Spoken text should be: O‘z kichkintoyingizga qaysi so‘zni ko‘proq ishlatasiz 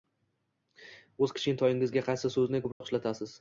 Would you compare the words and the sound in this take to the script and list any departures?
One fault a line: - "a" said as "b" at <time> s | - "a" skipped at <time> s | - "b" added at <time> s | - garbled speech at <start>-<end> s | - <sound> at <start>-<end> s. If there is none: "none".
- dropout at 2.7-2.8 s